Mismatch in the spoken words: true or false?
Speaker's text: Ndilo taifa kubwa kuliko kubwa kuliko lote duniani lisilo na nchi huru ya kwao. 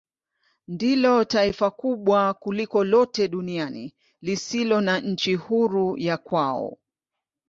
true